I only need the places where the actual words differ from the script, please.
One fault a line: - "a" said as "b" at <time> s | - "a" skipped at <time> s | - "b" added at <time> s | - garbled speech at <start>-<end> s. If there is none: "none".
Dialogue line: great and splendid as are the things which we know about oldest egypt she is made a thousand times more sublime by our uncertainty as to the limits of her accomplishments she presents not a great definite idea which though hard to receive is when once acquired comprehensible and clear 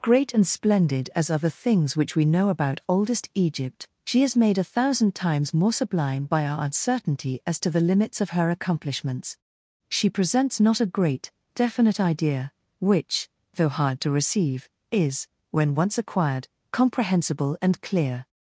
none